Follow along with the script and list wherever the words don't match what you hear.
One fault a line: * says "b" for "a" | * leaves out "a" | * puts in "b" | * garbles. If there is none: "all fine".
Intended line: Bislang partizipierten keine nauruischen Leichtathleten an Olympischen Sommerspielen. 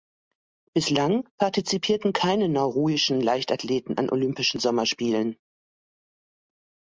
all fine